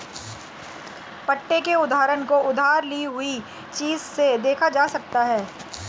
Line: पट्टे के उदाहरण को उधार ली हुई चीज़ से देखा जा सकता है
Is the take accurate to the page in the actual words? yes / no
yes